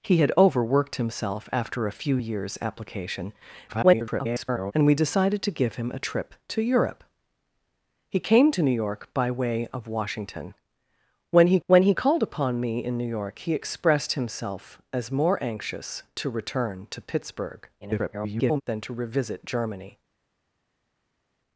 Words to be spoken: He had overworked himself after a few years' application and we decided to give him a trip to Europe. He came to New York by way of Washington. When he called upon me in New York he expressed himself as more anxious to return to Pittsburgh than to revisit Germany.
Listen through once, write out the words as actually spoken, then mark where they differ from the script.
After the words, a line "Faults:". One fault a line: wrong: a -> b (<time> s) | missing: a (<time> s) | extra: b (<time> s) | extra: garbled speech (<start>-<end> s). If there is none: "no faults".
He had overworked himself after a few years' application [garbled] and we decided to give him a trip to Europe. He came to New York by way of Washington. When he when he called upon me in New York he expressed himself as more anxious to return to Pittsburgh [garbled] than to revisit Germany.
Faults:
extra: garbled speech (3.7-4.7 s)
extra: when he (11.7 s)
extra: garbled speech (17.8-18.6 s)